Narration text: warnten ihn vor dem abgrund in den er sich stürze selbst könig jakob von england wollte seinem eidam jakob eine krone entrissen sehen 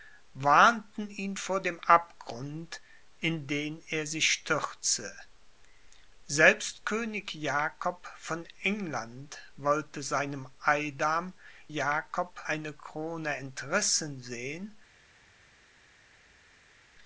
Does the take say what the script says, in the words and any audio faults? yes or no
yes